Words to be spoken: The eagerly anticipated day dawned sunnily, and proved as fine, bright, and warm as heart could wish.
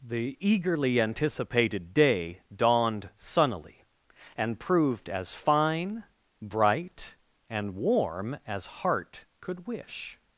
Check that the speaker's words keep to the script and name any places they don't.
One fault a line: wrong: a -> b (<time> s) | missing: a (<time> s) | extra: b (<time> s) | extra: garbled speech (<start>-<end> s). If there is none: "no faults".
no faults